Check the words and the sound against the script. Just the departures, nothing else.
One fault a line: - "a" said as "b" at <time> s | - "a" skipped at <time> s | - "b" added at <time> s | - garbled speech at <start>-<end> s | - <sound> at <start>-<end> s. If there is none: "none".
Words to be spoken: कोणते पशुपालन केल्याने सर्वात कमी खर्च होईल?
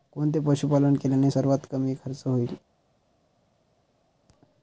none